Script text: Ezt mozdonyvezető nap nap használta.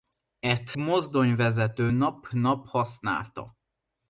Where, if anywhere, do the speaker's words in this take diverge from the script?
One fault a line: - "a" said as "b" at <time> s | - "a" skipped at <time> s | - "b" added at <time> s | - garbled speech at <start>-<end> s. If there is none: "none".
none